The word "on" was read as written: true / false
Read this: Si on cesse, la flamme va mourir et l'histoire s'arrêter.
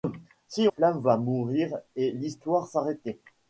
false